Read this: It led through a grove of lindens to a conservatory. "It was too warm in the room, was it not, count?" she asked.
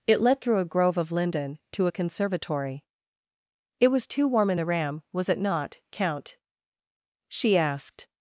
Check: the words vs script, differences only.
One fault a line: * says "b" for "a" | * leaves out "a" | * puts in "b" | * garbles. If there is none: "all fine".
* says "linden" for "lindens"
* says "ram" for "room"